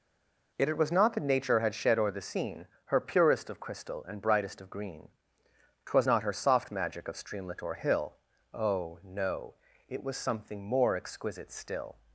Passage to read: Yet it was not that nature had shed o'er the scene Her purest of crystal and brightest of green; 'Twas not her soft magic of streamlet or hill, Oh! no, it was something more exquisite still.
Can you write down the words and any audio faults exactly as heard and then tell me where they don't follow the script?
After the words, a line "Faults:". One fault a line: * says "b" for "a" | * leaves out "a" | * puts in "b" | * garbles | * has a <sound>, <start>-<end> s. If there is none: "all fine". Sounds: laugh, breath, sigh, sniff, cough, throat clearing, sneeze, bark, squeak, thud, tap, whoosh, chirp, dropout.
Yet it was not that nature had shed o'er the scene Her purest of crystal and brightest of green; 'Twas not her soft magic of streamlet or hill, Oh! no, it was something more exquisite still.
Faults:
all fine